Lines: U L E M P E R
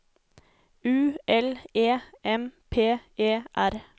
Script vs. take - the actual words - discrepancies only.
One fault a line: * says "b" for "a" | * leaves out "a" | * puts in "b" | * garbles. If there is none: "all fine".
all fine